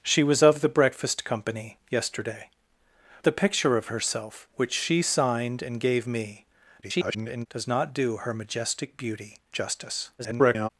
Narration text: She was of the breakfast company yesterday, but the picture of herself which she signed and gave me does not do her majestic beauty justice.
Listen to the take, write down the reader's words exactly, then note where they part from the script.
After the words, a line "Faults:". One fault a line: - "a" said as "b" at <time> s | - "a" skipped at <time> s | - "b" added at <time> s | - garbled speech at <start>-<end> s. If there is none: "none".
She was of the breakfast company yesterday, the picture of herself which she signed and gave me [garbled] does not do her majestic beauty justice. [garbled]
Faults:
- "but" skipped at 2.5 s
- garbled speech at 6.8-7.5 s
- garbled speech at 10.2-10.7 s